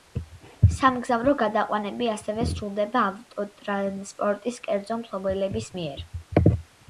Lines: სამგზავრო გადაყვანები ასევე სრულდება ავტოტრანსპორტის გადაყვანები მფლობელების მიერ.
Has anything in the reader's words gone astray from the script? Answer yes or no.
yes